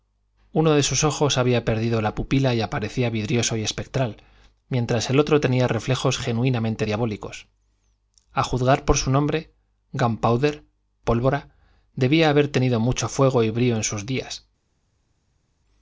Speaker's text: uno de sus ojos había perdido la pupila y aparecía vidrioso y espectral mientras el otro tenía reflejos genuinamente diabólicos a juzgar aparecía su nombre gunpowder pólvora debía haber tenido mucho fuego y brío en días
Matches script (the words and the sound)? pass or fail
fail